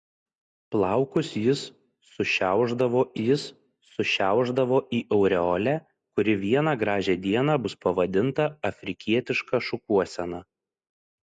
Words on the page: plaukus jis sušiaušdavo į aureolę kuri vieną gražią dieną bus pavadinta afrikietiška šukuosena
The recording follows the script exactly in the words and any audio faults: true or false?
false